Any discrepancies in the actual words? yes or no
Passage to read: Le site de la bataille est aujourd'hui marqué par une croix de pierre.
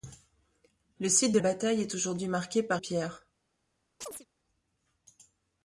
yes